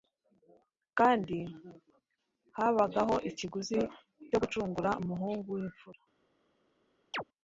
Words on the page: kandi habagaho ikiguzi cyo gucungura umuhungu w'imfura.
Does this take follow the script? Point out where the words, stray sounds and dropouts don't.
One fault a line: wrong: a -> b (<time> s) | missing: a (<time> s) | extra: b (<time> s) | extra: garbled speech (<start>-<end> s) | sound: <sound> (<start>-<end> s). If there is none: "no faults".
sound: chirp (7.1-7.2 s)